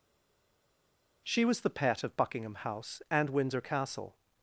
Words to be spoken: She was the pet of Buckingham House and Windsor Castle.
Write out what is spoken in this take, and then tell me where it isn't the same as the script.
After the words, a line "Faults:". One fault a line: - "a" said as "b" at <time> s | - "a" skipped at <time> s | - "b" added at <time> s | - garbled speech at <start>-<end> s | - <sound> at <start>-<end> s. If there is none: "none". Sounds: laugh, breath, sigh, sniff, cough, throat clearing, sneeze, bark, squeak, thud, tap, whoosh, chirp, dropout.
She was the pet of Buckingham House and Windsor Castle.
Faults:
none